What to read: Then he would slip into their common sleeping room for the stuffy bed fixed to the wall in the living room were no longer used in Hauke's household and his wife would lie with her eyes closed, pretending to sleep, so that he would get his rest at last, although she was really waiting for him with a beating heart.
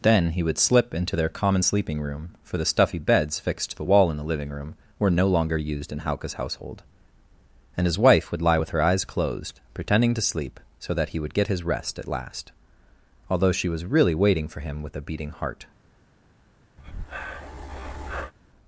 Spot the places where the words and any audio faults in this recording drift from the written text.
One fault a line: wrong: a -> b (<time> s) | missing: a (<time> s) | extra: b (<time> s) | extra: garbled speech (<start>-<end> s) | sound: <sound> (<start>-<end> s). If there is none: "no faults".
wrong: bed -> beds (3.0 s)
sound: breath (16.8-18.3 s)